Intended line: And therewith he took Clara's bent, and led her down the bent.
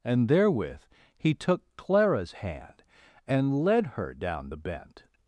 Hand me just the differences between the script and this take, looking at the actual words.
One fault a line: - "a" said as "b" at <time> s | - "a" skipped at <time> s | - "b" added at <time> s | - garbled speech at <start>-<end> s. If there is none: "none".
- "bent" said as "hand" at 2.3 s